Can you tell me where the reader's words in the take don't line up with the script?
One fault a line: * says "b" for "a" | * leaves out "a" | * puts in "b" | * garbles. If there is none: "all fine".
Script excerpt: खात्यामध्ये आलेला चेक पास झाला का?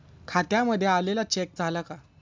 * leaves out "पास"